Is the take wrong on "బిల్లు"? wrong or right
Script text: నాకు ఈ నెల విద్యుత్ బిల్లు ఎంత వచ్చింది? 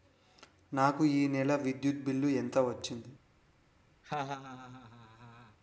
right